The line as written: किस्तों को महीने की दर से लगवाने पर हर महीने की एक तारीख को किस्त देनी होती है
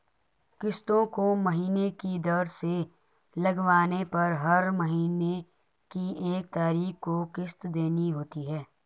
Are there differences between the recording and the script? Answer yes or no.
no